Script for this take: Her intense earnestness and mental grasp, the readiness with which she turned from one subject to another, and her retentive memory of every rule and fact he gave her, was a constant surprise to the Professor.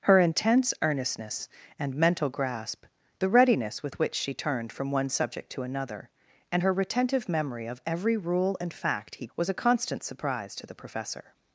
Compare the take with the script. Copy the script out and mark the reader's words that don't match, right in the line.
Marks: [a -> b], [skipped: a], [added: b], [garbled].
Her intense earnestness and mental grasp, the readiness with which she turned from one subject to another, and her retentive memory of every rule and fact he [skipped: gave her,] was a constant surprise to the Professor.